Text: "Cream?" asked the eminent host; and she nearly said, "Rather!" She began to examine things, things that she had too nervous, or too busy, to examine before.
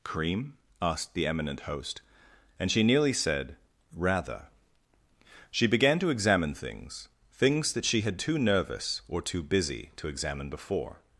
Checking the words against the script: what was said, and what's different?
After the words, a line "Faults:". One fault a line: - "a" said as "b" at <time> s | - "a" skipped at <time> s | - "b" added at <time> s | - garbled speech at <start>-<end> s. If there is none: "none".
"Cream?" asked the eminent host; and she nearly said, "Rather!" She began to examine things, things that she had too nervous, or too busy, to examine before.
Faults:
none